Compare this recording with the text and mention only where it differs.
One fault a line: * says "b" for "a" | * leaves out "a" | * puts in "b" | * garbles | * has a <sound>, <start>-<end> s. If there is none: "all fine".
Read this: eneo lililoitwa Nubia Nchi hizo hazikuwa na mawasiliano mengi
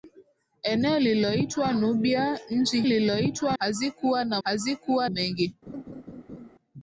* says "lililoitwa" for "hizo"
* says "hazikuwa" for "mawasiliano"
* has a laugh, 5.7-6.5 s